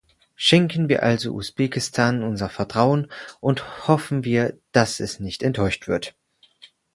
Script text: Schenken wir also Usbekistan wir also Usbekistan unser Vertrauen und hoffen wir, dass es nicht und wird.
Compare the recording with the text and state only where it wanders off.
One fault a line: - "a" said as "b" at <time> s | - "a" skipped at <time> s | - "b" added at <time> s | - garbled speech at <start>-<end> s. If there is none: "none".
- "wir also Usbekistan" skipped at 2.2 s
- "und" said as "enttäuscht" at 5.4 s